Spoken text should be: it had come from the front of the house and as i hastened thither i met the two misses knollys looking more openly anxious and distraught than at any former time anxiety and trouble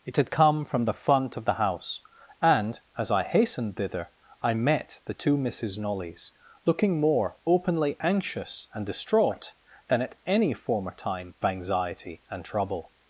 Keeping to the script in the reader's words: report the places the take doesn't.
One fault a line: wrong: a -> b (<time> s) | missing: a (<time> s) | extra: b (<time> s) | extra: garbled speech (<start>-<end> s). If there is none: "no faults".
no faults